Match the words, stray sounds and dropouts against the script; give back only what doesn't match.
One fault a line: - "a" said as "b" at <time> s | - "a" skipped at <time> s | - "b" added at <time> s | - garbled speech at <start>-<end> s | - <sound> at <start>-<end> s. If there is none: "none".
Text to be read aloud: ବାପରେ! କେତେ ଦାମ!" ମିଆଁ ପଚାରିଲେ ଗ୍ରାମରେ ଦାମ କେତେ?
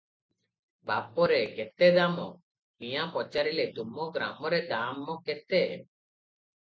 - "ତୁମ" added at 3.8 s